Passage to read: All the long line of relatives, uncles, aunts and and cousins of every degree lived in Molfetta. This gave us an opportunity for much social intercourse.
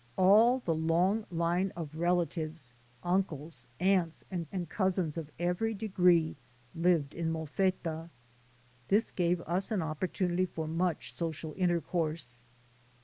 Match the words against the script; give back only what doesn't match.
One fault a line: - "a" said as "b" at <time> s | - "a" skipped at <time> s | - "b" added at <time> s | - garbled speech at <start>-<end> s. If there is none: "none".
none